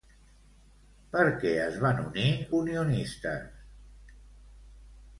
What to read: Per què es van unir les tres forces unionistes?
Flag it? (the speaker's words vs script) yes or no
yes